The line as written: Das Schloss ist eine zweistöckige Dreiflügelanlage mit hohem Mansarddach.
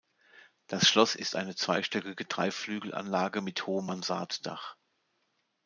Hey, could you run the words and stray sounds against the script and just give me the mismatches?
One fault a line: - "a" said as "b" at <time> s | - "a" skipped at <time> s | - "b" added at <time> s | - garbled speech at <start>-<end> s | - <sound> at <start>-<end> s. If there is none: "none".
none